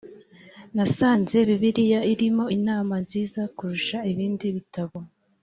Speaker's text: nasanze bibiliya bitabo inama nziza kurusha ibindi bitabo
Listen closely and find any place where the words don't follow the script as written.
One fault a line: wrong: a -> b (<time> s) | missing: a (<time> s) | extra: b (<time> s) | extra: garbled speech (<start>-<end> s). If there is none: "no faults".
wrong: bitabo -> irimo (2.1 s)